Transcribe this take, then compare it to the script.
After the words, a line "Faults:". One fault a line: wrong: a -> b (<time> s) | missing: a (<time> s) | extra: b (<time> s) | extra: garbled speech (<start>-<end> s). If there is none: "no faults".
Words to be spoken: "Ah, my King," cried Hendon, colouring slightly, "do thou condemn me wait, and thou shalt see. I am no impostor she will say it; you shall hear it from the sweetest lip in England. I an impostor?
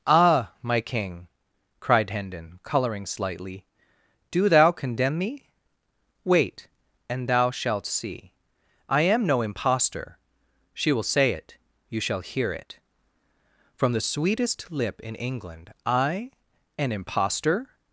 "Ah, my King," cried Hendon, colouring slightly, "do thou condemn me wait, and thou shalt see. I am no impostor she will say it; you shall hear it from the sweetest lip in England. I an impostor?
Faults:
no faults